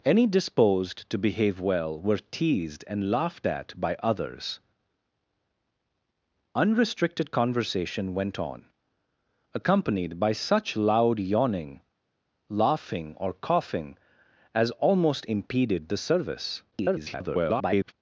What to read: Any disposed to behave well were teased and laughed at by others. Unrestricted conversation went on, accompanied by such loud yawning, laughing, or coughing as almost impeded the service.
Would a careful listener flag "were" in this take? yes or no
no